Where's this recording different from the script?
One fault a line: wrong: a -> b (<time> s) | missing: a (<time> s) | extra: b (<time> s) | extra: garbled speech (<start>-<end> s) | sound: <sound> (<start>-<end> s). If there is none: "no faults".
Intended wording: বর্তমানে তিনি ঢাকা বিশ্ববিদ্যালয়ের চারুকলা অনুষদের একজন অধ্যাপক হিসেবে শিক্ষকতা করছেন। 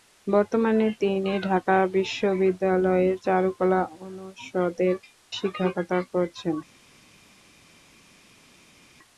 missing: একজন অধ্যাপক হিসেবে (5.0 s)